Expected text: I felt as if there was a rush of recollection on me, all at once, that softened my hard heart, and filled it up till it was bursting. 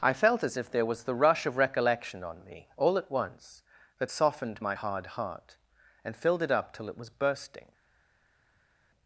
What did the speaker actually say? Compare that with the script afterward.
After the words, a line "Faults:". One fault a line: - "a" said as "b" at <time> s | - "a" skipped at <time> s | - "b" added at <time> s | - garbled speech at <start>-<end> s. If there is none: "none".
I felt as if there was the rush of recollection on me, all at once, that softened my hard heart, and filled it up till it was bursting.
Faults:
- "a" said as "the" at 1.0 s